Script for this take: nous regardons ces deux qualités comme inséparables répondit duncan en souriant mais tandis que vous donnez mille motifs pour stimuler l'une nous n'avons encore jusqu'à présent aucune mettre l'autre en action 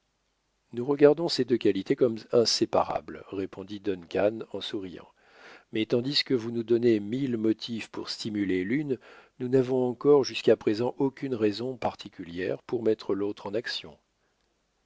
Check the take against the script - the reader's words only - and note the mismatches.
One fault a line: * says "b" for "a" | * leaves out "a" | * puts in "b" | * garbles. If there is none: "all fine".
* puts in "nous"
* puts in "raison particulière pour"